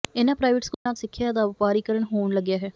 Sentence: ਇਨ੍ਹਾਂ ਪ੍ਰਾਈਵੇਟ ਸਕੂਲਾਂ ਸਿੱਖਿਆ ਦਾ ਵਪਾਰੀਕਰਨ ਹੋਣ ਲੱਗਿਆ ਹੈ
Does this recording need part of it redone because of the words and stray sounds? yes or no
yes